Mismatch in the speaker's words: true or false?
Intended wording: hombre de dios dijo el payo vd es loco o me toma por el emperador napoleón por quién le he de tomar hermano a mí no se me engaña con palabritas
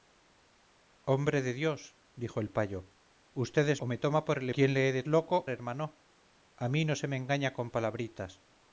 true